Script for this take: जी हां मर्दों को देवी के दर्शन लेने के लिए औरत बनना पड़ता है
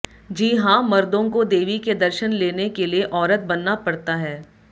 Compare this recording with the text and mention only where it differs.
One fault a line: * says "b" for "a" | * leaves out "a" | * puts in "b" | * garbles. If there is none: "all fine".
all fine